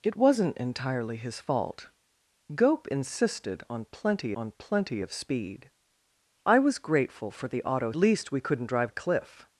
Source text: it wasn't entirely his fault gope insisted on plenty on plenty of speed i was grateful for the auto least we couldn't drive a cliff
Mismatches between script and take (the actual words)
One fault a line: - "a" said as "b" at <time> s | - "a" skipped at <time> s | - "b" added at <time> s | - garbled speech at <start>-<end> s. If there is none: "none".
none